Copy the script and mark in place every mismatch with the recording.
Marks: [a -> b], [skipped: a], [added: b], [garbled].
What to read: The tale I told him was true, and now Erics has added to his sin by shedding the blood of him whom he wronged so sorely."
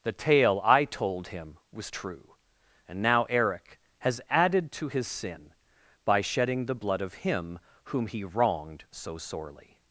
The tale I told him was true, and now [Erics -> Eric] has added to his sin by shedding the blood of him whom he wronged so sorely."